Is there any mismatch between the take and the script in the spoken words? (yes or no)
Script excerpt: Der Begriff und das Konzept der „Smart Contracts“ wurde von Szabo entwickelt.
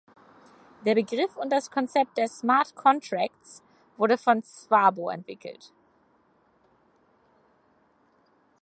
no